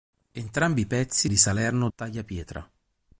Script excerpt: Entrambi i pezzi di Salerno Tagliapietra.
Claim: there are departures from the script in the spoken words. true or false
false